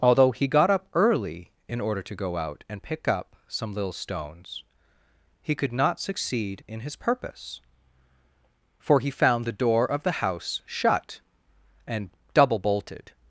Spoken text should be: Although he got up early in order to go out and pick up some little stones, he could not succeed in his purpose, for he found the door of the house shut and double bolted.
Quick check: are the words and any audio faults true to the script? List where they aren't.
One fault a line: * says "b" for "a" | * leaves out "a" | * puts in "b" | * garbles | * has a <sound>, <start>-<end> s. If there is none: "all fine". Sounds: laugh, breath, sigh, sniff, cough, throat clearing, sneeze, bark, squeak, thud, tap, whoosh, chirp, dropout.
all fine